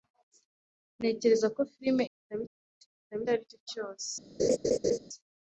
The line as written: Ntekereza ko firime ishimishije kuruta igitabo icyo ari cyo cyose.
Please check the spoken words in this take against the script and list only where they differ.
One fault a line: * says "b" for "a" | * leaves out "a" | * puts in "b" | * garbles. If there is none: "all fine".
* says "igitabo" for "ishimishije"
* leaves out "icyo"